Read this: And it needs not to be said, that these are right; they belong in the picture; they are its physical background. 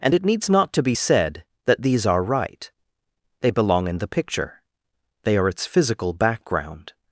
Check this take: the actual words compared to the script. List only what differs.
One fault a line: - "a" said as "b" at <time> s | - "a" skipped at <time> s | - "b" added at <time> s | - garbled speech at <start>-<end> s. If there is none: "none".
none